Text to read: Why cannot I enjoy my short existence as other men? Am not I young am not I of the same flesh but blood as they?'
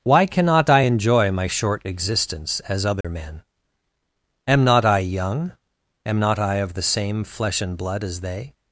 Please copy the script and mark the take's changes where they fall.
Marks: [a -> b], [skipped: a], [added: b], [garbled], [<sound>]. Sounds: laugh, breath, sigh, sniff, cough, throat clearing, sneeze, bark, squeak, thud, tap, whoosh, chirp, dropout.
Why cannot I enjoy my short existence as other [dropout] men? Am not I young am not I of the same flesh [but -> and] blood as they?'